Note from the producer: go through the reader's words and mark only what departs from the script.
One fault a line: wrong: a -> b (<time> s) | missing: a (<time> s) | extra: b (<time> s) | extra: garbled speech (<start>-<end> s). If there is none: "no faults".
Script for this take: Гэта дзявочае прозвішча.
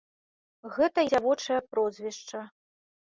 no faults